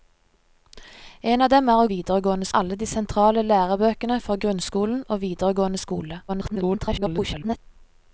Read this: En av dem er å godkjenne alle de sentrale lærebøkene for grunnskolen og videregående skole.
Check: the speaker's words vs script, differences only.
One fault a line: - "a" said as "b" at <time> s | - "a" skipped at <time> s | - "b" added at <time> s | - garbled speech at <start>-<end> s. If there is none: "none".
- "godkjenne" said as "videregående" at 1.9 s
- garbled speech at 6.3-7.6 s